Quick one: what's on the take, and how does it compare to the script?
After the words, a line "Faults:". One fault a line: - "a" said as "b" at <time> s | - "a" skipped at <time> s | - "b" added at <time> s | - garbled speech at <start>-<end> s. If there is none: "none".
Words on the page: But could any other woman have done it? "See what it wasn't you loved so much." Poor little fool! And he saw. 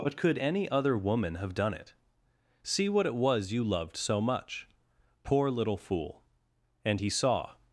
But could any other woman have done it? "See what it was you loved so much." Poor little fool! And he saw.
Faults:
- "wasn't" said as "was" at 3.1 s